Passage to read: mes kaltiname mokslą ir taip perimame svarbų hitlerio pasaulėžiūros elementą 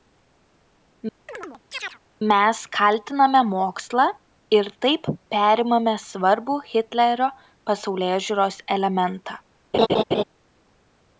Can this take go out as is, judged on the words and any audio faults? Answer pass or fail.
fail